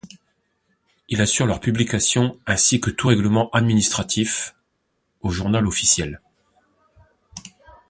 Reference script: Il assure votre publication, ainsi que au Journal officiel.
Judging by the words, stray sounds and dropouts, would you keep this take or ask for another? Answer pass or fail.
fail